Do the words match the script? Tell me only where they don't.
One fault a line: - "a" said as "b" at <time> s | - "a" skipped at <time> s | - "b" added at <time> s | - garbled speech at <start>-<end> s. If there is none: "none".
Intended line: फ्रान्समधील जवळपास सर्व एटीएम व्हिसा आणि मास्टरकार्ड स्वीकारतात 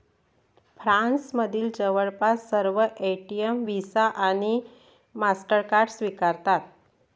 none